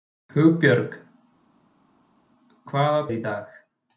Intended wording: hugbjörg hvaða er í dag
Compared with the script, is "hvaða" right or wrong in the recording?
right